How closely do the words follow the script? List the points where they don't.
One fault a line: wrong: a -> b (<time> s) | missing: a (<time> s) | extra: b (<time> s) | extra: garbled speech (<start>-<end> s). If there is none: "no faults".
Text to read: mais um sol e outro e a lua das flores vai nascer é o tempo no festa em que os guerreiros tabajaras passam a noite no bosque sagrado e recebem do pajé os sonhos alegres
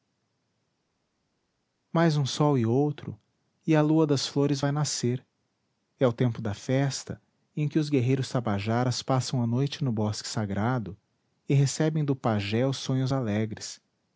wrong: no -> da (6.4 s)